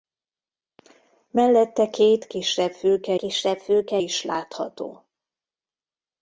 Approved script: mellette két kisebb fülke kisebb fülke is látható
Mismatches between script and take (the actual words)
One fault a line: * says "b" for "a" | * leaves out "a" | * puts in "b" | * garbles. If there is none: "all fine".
all fine